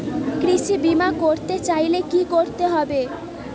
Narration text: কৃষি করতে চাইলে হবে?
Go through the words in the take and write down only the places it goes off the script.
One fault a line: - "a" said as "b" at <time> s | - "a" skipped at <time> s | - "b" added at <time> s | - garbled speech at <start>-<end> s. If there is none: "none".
- "বিমা" added at 0.8 s
- "কি করতে" added at 2.1 s